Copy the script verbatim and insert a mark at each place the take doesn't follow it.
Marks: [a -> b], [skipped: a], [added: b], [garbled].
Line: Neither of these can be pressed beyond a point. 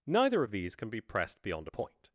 Neither of these can be pressed beyond a point.